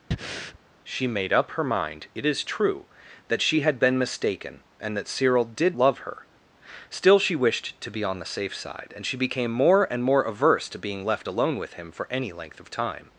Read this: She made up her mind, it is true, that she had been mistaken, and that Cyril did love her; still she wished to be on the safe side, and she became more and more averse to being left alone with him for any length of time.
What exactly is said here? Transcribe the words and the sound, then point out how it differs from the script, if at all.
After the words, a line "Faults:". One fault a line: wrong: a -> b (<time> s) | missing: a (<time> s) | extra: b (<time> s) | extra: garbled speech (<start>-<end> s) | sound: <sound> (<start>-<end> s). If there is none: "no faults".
She made up her mind, it is true, that she had been mistaken, and that Cyril did love her; still she wished to be on the safe side, and she became more and more averse to being left alone with him for any length of time.
Faults:
sound: breath (0.1-0.6 s)